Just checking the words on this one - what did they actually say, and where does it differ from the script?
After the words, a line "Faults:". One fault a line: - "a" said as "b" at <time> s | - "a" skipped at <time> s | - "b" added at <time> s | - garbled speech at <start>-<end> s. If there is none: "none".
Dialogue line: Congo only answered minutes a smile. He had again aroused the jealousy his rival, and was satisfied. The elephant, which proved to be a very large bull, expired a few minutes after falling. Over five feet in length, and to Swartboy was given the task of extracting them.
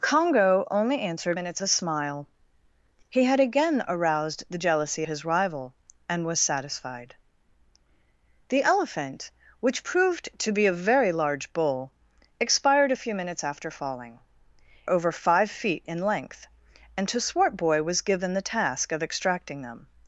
Congo only answered minutes a smile. He had again aroused the jealousy his rival, and was satisfied. The elephant, which proved to be a very large bull, expired a few minutes after falling. Over five feet in length, and to Swartboy was given the task of extracting them.
Faults:
none